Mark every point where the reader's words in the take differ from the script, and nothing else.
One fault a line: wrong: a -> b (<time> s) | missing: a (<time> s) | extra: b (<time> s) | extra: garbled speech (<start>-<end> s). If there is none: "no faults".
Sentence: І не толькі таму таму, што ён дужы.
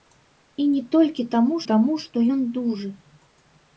no faults